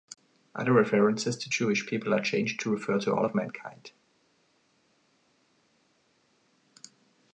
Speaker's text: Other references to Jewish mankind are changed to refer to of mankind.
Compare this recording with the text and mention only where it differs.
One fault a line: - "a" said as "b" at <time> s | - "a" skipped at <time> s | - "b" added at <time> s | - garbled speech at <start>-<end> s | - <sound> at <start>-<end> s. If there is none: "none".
- "mankind" said as "people" at 1.8 s
- "all" added at 3.1 s